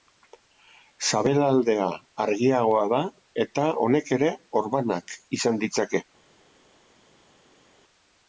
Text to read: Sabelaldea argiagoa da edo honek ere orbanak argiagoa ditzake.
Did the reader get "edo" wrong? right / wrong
wrong